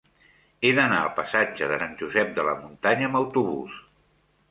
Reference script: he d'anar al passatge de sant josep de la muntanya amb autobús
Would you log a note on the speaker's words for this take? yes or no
no